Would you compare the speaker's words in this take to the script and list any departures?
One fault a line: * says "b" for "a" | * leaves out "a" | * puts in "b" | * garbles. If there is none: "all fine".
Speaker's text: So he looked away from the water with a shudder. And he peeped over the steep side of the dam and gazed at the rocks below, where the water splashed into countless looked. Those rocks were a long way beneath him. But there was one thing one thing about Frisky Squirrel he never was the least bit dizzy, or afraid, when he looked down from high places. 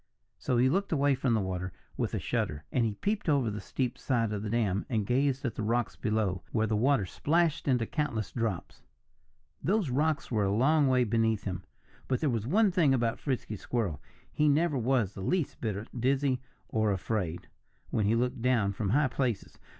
* says "drops" for "looked"
* leaves out "one thing"